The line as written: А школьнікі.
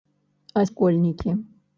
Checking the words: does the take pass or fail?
pass